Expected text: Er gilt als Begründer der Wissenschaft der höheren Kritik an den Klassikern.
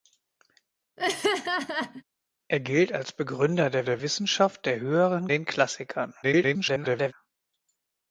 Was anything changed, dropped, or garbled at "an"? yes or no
yes